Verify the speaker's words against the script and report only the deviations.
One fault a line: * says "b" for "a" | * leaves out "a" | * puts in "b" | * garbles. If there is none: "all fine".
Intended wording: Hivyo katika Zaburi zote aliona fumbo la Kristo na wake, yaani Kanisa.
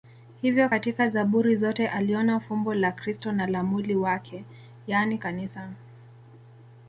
* puts in "la mwili"